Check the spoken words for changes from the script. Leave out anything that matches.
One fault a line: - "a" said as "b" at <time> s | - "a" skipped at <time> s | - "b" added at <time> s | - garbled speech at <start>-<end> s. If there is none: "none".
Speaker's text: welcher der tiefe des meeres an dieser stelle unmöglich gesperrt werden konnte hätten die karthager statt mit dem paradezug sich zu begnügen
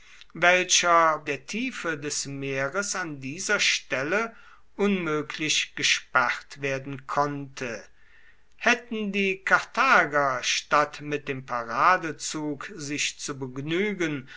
none